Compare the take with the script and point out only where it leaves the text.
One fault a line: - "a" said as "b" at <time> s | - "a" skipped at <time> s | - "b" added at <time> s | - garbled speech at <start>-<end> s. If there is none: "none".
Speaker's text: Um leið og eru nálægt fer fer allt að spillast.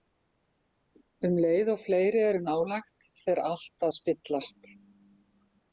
- "fleiri" added at 1.8 s
- "fer" skipped at 3.5 s